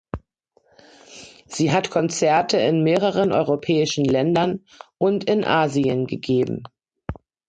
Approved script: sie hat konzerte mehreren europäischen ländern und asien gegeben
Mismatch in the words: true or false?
true